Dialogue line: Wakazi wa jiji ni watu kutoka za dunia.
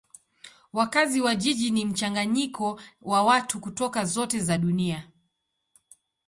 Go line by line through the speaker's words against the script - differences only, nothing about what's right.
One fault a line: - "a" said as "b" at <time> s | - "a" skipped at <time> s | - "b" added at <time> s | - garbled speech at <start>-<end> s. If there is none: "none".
- "mchanganyiko wa" added at 1.9 s
- "zote" added at 4.0 s